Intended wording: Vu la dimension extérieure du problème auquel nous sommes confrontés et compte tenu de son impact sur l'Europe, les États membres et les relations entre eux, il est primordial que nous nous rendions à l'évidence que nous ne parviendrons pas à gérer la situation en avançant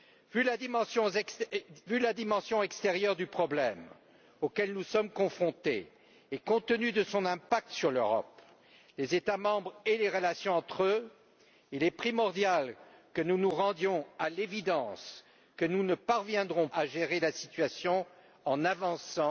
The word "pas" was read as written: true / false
false